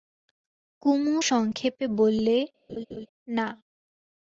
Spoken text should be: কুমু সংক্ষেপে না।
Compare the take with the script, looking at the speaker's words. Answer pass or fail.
fail